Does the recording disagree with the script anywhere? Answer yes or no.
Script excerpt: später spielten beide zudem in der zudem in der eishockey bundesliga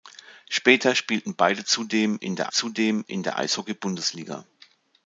no